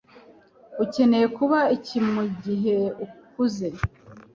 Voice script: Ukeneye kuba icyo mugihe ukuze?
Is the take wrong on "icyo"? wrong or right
wrong